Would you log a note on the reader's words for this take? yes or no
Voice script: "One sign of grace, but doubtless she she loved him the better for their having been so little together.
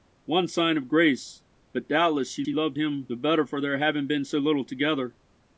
no